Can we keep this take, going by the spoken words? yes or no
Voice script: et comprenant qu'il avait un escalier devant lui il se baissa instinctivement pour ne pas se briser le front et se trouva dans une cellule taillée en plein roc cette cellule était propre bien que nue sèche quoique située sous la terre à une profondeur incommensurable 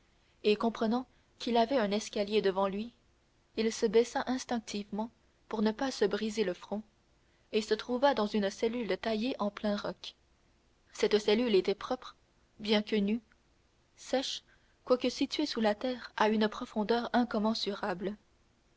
yes